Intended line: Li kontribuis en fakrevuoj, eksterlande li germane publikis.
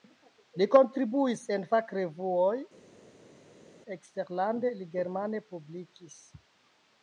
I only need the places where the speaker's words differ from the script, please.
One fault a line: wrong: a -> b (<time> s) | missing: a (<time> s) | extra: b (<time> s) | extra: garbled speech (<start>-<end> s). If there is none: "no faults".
no faults